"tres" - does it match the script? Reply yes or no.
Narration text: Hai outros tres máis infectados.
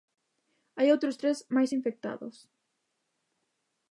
yes